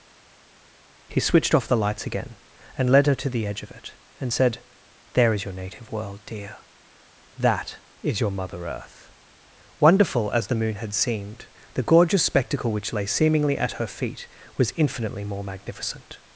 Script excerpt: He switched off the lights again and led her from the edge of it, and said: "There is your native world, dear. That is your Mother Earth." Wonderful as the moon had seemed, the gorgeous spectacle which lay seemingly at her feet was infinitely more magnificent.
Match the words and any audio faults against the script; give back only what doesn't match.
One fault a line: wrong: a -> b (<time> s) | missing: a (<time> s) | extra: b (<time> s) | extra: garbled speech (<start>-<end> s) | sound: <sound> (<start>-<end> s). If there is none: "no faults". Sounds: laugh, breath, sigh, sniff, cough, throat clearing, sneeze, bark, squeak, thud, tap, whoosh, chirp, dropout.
wrong: from -> to (3.2 s)